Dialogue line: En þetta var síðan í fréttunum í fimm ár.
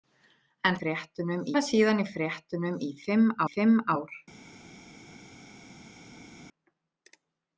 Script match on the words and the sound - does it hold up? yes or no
no